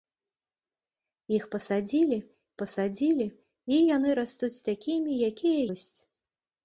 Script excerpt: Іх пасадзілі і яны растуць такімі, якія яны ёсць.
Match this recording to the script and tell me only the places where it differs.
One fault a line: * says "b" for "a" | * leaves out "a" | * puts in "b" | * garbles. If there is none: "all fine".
* puts in "пасадзілі"
* leaves out "яны"